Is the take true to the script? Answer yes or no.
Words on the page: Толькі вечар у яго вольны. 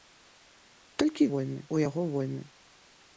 no